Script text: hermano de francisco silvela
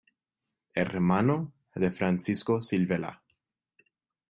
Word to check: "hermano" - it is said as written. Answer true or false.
true